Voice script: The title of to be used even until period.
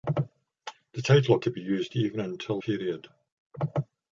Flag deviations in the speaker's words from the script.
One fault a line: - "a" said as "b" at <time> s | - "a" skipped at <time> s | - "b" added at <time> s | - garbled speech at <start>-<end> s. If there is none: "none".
none